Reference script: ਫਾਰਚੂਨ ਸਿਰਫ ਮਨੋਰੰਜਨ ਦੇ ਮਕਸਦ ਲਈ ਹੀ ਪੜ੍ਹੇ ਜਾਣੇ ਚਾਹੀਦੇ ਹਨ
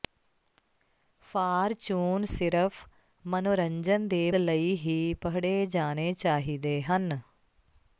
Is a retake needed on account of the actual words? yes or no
yes